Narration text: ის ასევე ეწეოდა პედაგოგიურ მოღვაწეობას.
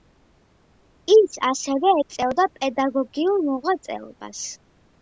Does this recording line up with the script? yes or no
yes